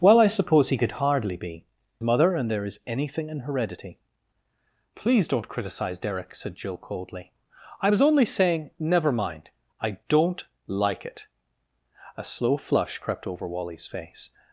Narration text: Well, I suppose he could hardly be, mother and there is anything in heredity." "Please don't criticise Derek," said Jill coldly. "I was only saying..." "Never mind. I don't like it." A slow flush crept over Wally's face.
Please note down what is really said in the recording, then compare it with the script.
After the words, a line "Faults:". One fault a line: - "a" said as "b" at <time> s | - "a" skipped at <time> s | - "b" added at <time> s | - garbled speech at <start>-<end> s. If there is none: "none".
Well, I suppose he could hardly be, mother and there is anything in heredity." "Please don't criticise Derek," said Jill coldly. "I was only saying..." "Never mind. I don't like it." A slow flush crept over Wally's face.
Faults:
none